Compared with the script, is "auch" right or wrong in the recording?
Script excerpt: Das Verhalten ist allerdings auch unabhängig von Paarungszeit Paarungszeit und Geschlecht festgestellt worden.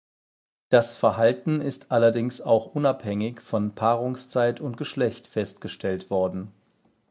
right